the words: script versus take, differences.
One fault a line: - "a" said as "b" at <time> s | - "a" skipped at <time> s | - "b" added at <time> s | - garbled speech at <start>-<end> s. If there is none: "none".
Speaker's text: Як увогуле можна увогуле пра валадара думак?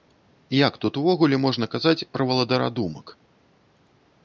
- "тут" added at 0.8 s
- "увогуле" said as "казаць" at 1.8 s